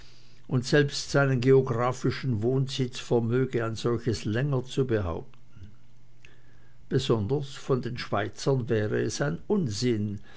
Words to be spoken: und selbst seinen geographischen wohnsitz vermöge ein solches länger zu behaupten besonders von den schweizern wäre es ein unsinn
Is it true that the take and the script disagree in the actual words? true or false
false